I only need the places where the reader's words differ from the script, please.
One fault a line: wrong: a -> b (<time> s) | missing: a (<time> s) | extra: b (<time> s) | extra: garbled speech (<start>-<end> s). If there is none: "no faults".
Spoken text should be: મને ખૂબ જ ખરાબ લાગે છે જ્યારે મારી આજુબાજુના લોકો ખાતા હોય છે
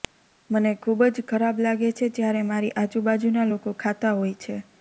no faults